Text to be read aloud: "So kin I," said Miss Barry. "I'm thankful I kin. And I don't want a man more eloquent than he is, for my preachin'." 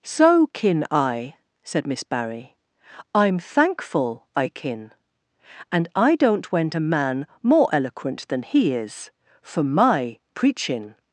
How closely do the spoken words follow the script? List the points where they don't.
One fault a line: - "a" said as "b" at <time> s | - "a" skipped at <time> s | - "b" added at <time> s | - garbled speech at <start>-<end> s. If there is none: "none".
- "want" said as "went" at 6.5 s